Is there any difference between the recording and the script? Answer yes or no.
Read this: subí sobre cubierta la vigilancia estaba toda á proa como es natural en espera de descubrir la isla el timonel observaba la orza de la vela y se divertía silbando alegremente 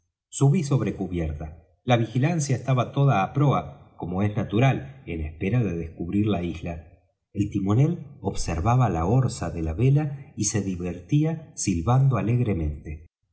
no